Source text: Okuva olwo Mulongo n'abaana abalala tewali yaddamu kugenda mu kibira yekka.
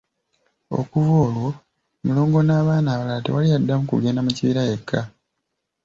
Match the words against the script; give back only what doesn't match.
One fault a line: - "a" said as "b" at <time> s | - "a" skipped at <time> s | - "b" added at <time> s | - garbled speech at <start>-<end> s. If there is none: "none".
none